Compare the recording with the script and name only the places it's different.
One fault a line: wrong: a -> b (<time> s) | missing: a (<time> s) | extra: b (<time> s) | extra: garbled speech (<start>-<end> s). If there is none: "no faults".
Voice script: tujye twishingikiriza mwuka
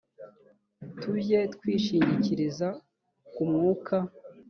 extra: ku (3.3 s)